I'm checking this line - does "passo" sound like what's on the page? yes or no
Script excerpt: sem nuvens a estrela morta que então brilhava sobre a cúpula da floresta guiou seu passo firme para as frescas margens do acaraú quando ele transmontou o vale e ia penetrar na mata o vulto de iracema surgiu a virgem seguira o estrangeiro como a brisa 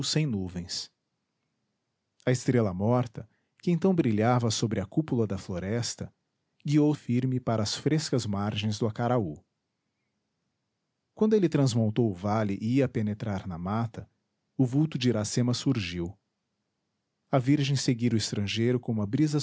no